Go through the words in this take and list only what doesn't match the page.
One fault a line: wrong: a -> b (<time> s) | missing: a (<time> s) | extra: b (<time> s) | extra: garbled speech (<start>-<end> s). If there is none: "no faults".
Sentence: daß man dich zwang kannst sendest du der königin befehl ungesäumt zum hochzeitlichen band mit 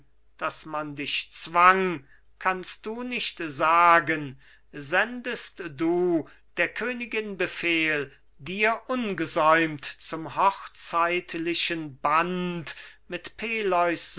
extra: du nicht sagen (2.9 s)
extra: dir (8.4 s)